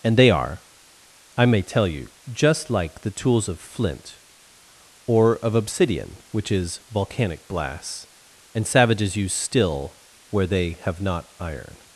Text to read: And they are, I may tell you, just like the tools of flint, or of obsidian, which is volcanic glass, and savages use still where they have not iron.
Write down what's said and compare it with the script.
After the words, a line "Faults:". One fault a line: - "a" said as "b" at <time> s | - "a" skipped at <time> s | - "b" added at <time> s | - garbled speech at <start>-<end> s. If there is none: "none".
And they are, I may tell you, just like the tools of flint, or of obsidian, which is volcanic glass, and savages use still where they have not iron.
Faults:
none